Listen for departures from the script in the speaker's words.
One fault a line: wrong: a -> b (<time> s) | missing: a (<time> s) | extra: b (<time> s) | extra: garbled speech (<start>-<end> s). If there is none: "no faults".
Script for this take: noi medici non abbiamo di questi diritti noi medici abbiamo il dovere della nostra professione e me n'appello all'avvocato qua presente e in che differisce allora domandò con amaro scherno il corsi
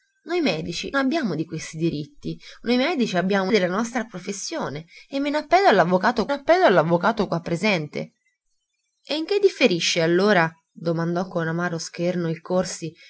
missing: non (0.9 s)
missing: il dovere (3.5 s)
extra: n'appello all'avvocato (6.3 s)